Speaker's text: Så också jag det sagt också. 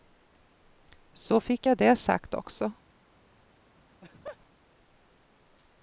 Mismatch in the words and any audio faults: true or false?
true